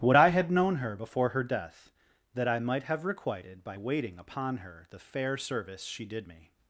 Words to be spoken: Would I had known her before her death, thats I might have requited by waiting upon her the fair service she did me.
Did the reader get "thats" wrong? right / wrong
wrong